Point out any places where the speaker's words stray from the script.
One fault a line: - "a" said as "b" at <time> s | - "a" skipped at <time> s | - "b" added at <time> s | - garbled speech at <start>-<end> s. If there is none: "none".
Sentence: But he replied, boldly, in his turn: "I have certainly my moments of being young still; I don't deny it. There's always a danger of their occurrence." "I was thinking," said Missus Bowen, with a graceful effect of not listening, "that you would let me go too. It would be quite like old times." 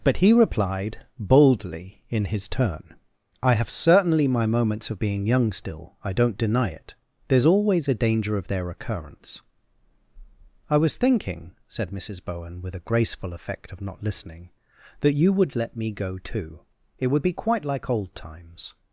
none